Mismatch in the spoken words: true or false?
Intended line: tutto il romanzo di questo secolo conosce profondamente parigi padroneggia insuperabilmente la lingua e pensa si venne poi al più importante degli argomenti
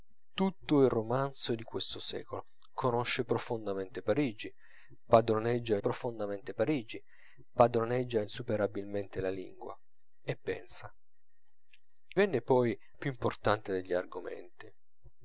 true